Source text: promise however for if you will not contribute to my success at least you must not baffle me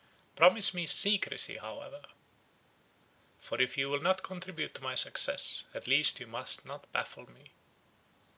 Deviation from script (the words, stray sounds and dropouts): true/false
true